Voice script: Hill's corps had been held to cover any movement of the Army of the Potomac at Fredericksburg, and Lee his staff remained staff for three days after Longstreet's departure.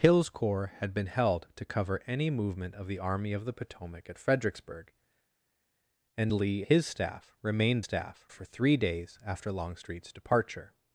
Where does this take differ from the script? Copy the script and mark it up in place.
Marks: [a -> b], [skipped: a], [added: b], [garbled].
Hill's corps had been held to cover any movement of the Army of the Potomac at Fredericksburg, and Lee his staff remained staff for three days after Longstreet's departure.